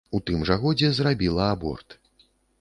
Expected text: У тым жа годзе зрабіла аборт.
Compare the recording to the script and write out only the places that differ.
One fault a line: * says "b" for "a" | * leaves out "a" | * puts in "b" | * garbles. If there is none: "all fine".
all fine